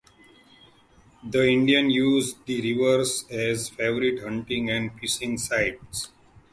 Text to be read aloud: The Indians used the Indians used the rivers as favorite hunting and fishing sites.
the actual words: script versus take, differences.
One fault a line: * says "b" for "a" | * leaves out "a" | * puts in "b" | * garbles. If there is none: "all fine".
* leaves out "Indians used the"